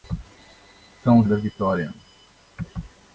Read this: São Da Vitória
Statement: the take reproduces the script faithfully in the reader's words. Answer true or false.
true